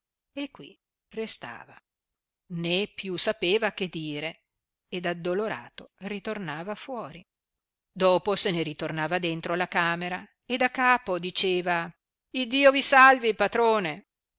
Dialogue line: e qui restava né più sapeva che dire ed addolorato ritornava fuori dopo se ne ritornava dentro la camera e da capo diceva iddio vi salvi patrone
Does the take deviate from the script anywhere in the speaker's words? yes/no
no